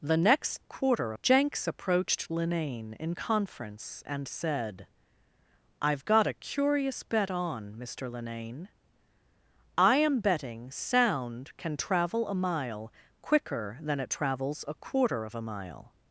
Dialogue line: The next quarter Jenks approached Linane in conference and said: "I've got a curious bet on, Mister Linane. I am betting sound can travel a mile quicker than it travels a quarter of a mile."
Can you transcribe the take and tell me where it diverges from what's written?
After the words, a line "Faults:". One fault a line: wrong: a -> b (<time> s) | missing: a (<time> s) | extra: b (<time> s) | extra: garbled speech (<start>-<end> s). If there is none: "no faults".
The next quarter Jenks approached Linane in conference and said: "I've got a curious bet on, Mister Linane. I am betting sound can travel a mile quicker than it travels a quarter of a mile."
Faults:
no faults